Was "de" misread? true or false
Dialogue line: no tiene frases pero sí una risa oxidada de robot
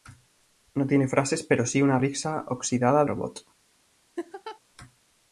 true